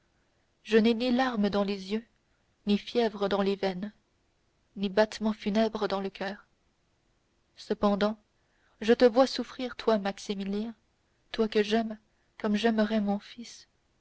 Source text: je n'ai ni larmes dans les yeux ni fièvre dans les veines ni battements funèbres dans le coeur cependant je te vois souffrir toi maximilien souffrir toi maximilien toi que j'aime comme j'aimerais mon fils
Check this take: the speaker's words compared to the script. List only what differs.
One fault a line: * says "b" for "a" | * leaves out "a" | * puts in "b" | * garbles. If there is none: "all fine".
* leaves out "souffrir toi maximilien"